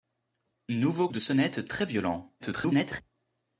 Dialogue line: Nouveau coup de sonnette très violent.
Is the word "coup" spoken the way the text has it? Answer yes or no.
no